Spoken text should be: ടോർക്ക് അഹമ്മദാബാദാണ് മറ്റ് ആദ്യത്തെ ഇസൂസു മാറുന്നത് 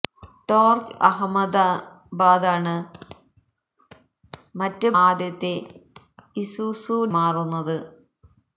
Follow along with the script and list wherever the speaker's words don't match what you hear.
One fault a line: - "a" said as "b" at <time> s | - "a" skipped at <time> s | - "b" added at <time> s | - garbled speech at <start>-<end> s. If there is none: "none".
none